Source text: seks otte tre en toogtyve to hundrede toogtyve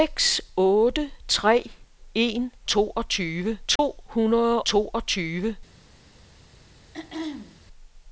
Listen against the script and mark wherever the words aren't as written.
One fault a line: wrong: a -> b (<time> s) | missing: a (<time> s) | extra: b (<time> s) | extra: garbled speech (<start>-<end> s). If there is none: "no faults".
no faults